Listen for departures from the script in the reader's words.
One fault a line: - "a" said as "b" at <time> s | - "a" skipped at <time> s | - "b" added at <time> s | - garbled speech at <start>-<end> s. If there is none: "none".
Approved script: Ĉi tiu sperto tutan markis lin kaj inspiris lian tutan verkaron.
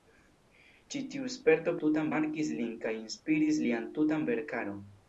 none